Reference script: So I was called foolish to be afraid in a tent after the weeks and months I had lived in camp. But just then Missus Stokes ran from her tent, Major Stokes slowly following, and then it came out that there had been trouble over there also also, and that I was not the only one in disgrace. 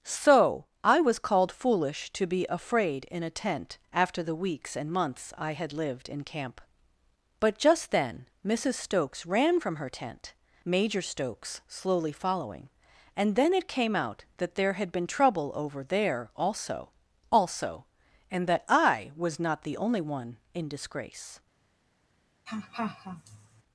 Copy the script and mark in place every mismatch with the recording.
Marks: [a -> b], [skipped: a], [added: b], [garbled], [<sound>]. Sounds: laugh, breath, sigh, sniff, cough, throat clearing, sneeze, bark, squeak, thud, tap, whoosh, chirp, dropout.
So I was called foolish to be afraid in a tent after the weeks and months I had lived in camp. But just then Missus Stokes ran from her tent, Major Stokes slowly following, and then it came out that there had been trouble over there also also, and that I was not the only one in disgrace. [laugh]